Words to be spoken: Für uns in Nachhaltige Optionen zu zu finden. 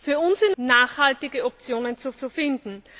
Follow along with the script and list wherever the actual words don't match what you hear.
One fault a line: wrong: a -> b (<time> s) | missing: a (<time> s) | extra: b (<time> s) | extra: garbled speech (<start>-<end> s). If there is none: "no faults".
no faults